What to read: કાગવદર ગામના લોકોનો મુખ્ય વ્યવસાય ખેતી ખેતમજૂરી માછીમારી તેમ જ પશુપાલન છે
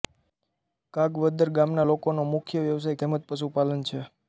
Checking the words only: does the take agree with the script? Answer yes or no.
no